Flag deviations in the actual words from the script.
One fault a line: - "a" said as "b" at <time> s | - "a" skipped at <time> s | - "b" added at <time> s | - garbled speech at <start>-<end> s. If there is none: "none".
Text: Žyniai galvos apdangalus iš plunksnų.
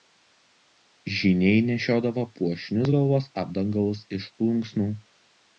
- "nešiodavo puošnius" added at 1.7 s